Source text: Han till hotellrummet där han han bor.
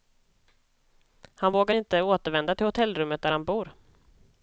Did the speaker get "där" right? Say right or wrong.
right